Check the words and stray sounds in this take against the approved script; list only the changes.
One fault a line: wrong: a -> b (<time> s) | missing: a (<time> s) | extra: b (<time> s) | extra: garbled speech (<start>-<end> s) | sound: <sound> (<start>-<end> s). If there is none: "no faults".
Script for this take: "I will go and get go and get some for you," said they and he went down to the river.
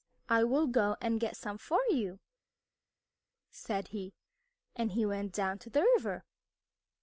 missing: go and get (1.4 s)
wrong: they -> he (3.9 s)